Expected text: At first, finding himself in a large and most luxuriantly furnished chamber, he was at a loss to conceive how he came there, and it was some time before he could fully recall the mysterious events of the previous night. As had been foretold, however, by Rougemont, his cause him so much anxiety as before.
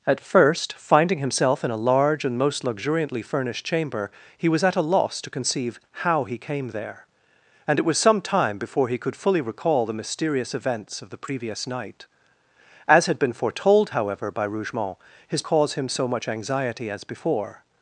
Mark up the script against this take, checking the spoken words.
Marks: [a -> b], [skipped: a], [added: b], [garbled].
At first, finding himself in a large and most luxuriantly furnished chamber, he was at a loss to conceive how he came there, and it was some time before he could fully recall the mysterious events of the previous night. As had been foretold, however, by Rougemont, his cause him so much anxiety as before.